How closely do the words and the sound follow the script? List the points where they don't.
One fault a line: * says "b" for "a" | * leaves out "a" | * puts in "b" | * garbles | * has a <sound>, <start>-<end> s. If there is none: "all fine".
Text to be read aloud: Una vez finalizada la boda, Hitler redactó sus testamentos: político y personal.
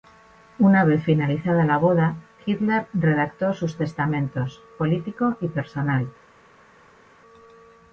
all fine